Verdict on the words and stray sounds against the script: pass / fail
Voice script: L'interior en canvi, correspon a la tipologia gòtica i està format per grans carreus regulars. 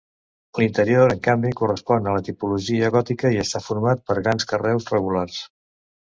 pass